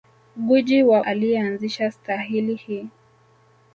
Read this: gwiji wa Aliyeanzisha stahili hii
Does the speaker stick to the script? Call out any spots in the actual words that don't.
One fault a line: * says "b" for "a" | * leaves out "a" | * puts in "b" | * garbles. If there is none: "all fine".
all fine